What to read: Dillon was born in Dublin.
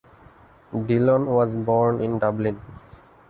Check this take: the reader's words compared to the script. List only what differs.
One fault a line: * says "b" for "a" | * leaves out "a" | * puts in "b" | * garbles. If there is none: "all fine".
all fine